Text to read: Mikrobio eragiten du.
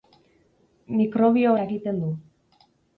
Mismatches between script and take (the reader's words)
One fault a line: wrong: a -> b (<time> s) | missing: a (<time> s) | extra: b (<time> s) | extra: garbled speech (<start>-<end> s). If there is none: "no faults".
no faults